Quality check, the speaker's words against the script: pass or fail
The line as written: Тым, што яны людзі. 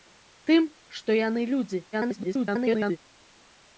fail